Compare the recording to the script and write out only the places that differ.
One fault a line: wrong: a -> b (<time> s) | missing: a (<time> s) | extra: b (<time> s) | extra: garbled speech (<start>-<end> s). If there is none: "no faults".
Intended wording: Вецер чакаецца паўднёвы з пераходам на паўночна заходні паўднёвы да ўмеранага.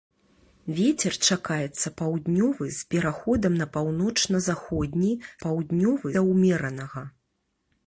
no faults